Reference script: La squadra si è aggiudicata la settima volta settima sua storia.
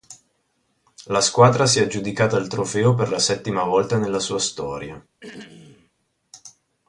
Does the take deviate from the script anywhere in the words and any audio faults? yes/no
yes